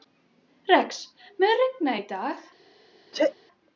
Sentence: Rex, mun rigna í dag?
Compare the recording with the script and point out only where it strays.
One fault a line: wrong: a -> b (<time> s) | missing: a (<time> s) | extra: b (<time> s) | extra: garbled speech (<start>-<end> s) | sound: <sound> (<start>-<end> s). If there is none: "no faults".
sound: sneeze (3.1-3.3 s)